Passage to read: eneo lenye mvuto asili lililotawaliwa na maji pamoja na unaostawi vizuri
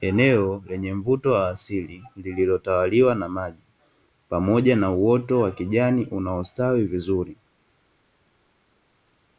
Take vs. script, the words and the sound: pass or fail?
fail